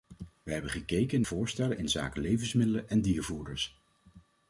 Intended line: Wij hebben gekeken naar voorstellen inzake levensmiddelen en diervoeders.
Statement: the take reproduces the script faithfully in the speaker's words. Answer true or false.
false